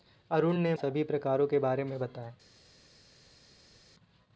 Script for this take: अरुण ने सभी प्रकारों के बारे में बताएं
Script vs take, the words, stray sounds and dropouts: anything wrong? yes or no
no